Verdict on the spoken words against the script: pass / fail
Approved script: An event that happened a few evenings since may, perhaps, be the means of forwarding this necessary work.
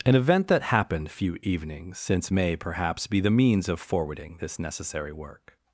fail